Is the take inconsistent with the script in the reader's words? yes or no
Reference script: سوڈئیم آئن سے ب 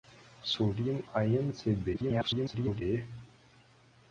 yes